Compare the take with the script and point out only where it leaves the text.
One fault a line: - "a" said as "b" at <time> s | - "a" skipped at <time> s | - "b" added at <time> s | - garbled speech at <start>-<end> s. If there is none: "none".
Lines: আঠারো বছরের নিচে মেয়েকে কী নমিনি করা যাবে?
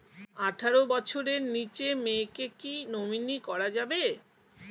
none